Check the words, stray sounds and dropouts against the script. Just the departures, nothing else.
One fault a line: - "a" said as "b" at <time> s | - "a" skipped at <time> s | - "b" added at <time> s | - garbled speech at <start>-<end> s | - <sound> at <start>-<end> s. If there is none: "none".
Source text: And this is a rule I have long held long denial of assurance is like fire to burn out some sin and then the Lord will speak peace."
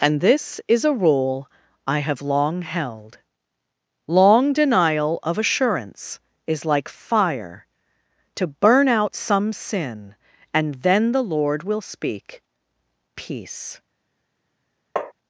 - tap at 15.0-15.1 s